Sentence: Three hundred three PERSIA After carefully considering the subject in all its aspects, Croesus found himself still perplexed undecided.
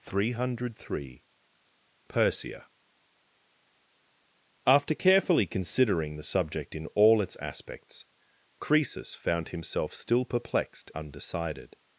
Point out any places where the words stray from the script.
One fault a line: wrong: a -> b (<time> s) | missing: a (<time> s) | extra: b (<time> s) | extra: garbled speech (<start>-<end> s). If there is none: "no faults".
no faults